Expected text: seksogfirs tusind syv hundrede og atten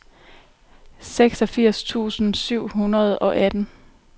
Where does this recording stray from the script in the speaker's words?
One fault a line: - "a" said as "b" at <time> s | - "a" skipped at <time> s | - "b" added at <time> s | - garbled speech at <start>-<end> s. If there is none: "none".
none